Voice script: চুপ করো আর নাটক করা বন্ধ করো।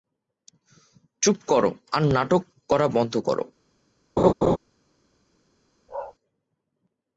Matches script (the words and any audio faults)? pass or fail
fail